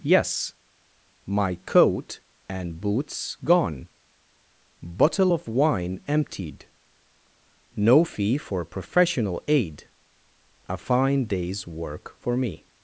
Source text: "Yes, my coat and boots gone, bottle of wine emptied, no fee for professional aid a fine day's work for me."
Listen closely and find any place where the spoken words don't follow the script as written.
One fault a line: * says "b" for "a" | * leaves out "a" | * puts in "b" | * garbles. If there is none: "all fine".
all fine